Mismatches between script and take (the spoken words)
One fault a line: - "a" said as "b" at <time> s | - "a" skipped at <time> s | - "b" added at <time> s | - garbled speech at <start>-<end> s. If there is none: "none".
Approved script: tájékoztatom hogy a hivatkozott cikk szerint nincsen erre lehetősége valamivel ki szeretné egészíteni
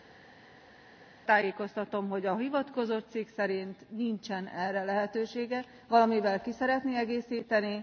none